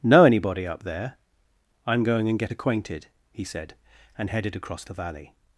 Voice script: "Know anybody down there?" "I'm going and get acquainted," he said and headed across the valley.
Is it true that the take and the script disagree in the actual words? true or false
true